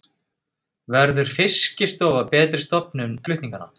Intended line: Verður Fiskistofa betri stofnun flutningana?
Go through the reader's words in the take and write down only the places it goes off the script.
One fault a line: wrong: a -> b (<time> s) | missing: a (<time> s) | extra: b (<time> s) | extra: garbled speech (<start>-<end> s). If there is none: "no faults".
no faults